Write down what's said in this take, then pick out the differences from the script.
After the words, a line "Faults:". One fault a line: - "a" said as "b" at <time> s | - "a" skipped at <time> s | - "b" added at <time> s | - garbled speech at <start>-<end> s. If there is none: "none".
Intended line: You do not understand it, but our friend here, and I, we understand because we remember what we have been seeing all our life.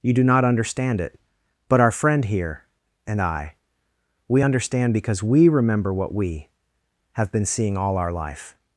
You do not understand it, but our friend here, and I, we understand because we remember what we have been seeing all our life.
Faults:
none